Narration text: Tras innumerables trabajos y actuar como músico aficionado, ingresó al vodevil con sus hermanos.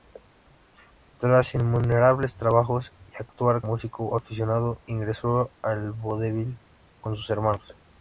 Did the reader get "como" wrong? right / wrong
wrong